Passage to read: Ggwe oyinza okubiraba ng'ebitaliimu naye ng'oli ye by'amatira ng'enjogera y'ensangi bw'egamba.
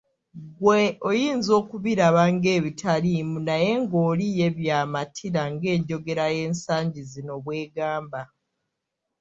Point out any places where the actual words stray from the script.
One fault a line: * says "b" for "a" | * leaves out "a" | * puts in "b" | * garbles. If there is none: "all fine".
* puts in "zino"